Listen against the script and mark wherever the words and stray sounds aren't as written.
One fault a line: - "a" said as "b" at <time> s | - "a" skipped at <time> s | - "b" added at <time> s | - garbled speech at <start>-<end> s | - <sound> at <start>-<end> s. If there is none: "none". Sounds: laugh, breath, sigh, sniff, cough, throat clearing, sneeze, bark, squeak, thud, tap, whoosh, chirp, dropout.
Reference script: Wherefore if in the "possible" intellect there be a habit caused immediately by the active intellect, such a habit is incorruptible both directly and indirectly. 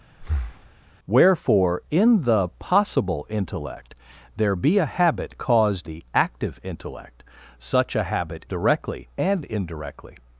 - breath at 0.2-0.7 s
- "if" skipped at 1.8 s
- "immediately by" skipped at 5.9 s
- "is incorruptible both" skipped at 8.4 s